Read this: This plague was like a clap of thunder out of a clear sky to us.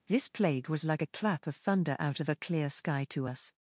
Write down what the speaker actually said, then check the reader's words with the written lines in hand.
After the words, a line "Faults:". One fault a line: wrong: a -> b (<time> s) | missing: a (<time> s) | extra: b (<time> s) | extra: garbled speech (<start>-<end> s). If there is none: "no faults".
This plague was like a clap of thunder out of a clear sky to us.
Faults:
no faults